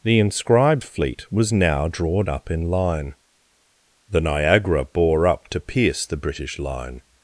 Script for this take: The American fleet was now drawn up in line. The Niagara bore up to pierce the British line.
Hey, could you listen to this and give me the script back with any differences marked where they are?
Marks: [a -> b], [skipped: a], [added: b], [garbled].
The [American -> Inscribed] fleet was now drawn up in line. The Niagara bore up to pierce the British line.